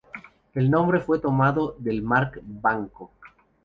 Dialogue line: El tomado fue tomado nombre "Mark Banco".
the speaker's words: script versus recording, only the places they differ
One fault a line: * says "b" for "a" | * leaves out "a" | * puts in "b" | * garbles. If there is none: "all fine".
* says "nombre" for "tomado"
* says "del" for "nombre"